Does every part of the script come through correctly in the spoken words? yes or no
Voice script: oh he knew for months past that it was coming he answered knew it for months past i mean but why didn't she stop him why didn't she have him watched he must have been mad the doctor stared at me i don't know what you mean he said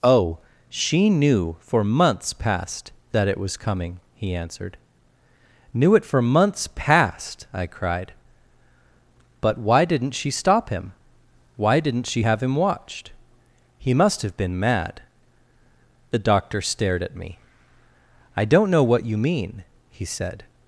no